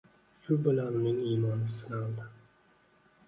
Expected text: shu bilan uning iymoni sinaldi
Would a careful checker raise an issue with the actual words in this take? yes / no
no